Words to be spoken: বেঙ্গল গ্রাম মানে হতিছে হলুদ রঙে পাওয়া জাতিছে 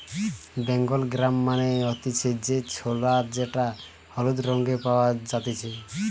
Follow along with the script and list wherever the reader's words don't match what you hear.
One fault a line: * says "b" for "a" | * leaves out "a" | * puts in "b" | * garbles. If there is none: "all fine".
* puts in "যে ছোলা যেটা"